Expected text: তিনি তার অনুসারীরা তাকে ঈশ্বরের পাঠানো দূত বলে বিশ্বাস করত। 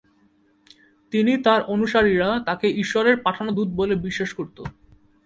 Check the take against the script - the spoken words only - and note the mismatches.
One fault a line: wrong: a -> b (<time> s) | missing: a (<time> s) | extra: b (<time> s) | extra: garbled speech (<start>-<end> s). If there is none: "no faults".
no faults